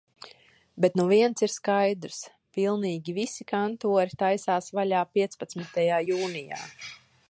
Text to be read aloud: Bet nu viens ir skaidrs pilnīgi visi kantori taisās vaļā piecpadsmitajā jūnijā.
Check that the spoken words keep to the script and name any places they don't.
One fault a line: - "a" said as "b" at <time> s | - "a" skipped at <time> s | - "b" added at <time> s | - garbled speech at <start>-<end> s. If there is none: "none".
none